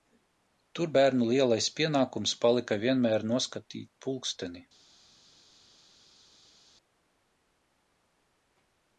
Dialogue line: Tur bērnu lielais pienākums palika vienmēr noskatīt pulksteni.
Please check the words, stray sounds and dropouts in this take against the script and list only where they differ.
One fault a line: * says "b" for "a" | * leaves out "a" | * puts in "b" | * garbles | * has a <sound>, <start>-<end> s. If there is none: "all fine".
all fine